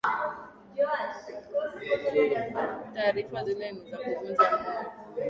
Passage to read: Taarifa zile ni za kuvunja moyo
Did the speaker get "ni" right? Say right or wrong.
right